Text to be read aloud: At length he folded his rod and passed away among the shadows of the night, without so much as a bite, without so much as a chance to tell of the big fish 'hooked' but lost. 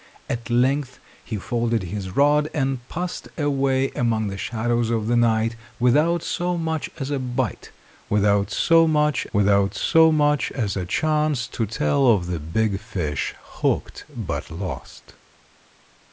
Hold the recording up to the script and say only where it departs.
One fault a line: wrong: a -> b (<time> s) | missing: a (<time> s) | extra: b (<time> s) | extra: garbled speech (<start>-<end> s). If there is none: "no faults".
extra: without so much (9.3 s)